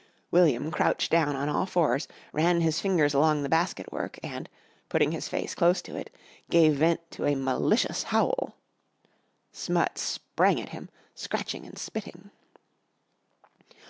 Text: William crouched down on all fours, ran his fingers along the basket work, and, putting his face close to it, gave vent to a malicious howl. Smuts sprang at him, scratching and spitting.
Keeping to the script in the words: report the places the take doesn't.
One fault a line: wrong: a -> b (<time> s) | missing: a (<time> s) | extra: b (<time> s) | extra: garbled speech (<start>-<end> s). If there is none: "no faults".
no faults